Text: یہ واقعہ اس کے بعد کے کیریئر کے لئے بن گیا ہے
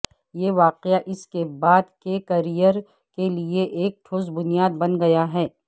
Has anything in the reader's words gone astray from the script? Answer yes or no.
yes